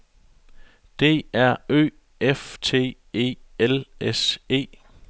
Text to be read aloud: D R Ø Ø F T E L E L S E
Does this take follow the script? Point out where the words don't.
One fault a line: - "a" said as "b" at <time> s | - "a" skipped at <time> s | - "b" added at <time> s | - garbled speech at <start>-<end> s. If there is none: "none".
- "Ø" skipped at 1.9 s
- "E L" skipped at 3.9 s